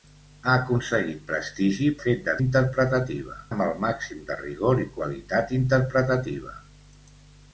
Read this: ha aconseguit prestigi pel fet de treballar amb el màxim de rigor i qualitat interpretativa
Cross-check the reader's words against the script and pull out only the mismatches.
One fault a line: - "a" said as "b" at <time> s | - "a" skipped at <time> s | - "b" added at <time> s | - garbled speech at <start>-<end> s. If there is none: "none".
- "pel" skipped at 1.9 s
- "treballar" said as "interpretativa" at 2.4 s